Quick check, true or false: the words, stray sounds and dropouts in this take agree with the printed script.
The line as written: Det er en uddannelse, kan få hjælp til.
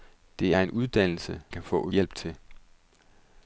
true